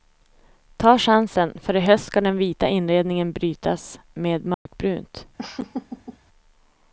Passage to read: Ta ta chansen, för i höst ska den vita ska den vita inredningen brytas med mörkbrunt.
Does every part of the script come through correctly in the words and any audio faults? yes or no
no